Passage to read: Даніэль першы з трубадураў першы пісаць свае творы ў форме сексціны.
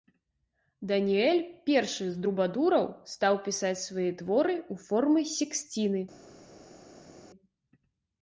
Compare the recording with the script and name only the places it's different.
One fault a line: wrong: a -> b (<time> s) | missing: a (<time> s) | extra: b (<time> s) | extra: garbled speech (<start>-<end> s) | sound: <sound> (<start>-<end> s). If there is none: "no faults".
wrong: першы -> стаў (3.1 s)